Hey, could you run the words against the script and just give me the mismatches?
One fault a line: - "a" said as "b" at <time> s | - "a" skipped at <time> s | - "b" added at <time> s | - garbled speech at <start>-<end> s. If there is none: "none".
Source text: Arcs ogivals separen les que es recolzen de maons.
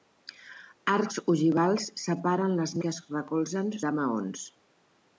none